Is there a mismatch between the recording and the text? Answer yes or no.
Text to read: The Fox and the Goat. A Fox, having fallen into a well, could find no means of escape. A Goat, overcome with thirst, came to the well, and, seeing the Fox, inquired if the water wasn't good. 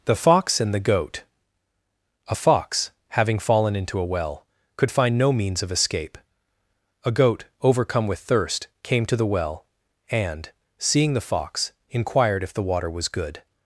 yes